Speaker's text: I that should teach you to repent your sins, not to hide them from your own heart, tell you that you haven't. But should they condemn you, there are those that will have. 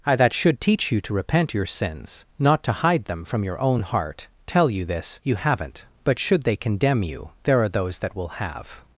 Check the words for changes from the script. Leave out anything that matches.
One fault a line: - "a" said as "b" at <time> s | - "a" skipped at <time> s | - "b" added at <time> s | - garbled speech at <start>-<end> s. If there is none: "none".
- "that" said as "this" at 4.8 s